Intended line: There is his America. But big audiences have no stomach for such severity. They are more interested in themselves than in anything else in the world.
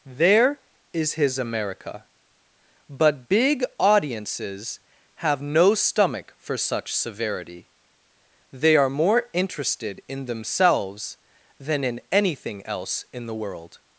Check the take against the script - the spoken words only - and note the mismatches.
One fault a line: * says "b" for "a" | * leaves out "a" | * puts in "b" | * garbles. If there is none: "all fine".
all fine